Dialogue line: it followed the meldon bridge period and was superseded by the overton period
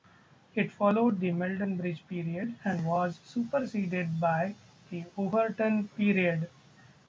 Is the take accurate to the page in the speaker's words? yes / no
yes